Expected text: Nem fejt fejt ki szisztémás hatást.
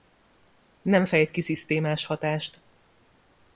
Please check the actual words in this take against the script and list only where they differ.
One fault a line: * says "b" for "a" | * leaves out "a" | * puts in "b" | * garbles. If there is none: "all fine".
* leaves out "fejt"